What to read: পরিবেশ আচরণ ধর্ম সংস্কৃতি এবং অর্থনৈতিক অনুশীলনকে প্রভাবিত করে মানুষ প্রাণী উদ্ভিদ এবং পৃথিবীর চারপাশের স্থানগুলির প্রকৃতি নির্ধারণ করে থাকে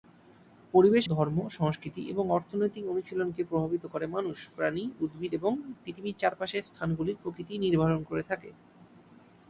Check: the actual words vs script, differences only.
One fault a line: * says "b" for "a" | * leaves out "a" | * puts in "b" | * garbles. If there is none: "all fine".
* leaves out "আচরণ"